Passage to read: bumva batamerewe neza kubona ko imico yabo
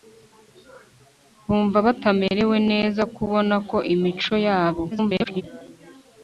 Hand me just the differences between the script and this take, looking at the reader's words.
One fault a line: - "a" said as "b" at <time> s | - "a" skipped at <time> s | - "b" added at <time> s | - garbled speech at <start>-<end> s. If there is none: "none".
- garbled speech at 4.9-5.4 s